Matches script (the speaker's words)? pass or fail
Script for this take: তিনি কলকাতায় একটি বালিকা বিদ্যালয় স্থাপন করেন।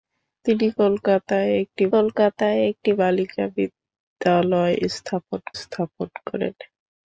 fail